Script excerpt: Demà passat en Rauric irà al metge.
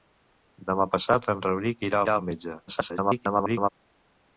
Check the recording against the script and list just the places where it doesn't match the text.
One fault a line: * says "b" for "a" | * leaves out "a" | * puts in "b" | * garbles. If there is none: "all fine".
* puts in "irà"
* garbles